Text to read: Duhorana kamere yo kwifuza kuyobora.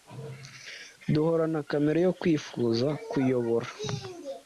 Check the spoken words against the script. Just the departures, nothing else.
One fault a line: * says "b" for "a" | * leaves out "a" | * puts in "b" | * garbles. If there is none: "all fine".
all fine